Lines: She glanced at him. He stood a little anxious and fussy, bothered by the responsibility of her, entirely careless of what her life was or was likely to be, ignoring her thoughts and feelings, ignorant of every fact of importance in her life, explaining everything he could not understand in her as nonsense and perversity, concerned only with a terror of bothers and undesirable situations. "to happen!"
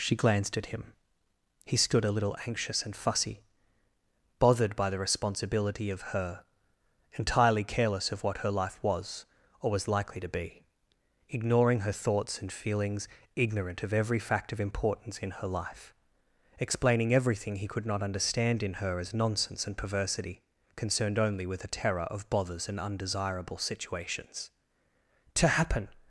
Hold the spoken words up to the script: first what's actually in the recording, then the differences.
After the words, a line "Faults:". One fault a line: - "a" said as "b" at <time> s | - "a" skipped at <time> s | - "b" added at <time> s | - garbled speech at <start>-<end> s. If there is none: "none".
She glanced at him. He stood a little anxious and fussy, bothered by the responsibility of her, entirely careless of what her life was or was likely to be, ignoring her thoughts and feelings, ignorant of every fact of importance in her life, explaining everything he could not understand in her as nonsense and perversity, concerned only with a terror of bothers and undesirable situations. "to happen!"
Faults:
none